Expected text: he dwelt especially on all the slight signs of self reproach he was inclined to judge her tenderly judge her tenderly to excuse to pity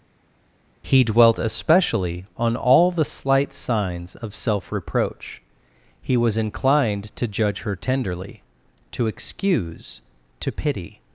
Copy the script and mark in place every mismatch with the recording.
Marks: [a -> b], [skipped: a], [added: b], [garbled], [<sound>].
he dwelt especially on all the slight signs of self reproach he was inclined to judge her tenderly [skipped: judge her tenderly] to excuse to pity